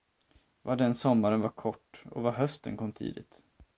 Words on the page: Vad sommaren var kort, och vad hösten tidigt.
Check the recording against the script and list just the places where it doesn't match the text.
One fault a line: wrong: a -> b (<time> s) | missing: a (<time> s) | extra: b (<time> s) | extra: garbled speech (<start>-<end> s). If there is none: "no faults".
extra: den (0.8 s)
extra: kom (2.8 s)